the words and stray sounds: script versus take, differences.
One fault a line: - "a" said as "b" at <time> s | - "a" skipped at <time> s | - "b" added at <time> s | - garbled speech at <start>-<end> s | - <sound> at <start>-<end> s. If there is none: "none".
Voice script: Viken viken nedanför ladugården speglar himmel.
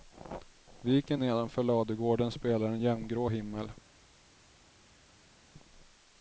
- "viken" skipped at 1.2 s
- "en jämngrå" added at 2.7 s